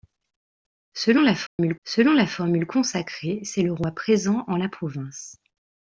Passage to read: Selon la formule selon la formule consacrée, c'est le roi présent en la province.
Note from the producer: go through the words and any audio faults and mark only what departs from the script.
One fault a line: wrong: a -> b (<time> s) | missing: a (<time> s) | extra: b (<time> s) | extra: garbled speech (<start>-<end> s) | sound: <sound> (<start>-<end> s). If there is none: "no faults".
sound: dropout (1.5-1.6 s)